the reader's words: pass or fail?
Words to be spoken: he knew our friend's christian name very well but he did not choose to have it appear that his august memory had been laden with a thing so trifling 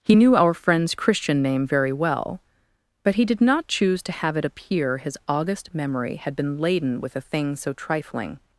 fail